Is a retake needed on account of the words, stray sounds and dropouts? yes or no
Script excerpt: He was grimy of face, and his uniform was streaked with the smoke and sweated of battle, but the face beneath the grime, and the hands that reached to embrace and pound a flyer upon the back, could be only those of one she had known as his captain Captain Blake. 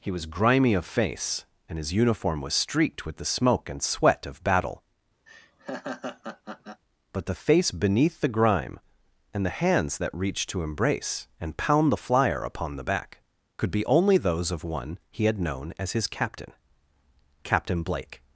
yes